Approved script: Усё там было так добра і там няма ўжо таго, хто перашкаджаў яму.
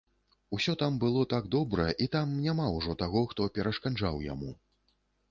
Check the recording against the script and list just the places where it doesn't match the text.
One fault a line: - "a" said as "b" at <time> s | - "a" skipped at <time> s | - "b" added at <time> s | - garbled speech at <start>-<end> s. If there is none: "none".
none